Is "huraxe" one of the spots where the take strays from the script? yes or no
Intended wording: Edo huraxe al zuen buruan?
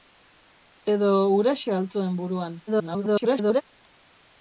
no